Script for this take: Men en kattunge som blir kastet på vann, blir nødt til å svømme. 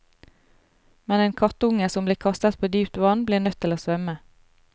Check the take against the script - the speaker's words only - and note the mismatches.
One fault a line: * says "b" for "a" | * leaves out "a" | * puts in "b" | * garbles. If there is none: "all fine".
* puts in "dypt"